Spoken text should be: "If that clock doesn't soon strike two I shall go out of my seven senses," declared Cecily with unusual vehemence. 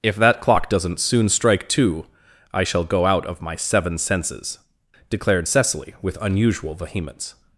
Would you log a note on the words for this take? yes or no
no